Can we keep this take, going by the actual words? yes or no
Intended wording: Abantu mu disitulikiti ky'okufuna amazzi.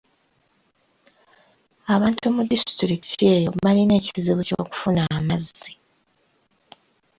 no